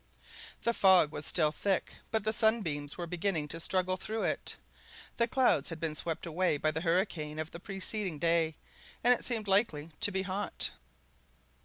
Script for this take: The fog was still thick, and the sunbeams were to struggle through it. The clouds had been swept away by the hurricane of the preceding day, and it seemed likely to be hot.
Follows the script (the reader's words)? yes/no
no